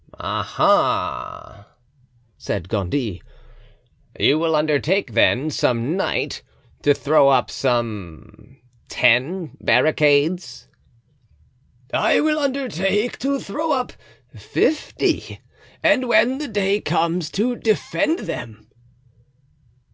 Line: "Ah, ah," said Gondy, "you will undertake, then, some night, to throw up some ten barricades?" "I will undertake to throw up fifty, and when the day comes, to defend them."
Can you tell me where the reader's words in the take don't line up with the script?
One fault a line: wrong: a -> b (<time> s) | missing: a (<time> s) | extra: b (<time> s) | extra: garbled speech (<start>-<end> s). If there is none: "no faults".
no faults